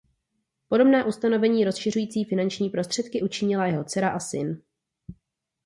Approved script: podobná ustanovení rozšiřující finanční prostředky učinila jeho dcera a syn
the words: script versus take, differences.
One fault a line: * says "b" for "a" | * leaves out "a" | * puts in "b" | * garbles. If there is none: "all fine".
all fine